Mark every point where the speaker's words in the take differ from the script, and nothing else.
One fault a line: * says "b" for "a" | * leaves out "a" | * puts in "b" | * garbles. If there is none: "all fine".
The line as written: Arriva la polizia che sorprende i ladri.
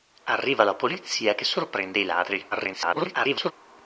* garbles